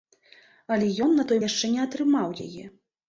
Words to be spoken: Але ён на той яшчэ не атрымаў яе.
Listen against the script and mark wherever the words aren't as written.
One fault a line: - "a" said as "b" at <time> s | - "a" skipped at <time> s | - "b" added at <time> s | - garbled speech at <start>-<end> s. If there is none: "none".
none